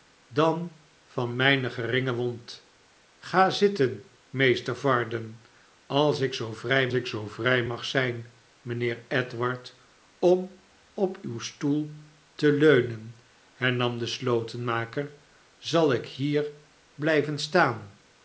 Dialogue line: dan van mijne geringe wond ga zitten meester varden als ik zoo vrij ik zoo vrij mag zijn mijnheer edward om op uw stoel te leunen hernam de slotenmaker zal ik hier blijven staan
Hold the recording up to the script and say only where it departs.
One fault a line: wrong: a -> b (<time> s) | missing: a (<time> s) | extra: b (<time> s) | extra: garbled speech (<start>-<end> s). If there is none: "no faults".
no faults